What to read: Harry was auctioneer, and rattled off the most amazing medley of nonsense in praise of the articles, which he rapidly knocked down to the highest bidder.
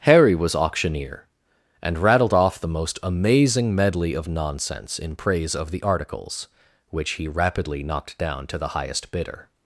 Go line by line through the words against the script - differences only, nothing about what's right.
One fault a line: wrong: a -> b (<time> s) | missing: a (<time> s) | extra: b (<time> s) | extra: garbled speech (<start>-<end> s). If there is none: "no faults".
no faults